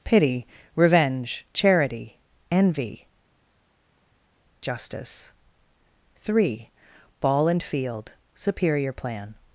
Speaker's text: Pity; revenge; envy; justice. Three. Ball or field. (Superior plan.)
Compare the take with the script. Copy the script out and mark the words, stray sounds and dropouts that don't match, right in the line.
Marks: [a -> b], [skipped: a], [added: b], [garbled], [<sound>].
Pity; revenge; [added: charity] envy; justice. Three. Ball [or -> and] field. (Superior plan.)